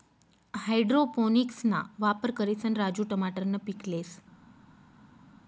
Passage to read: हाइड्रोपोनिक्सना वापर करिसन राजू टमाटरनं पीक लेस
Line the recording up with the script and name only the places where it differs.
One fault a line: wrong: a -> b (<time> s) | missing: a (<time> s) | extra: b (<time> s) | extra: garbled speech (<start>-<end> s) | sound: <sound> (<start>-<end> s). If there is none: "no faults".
no faults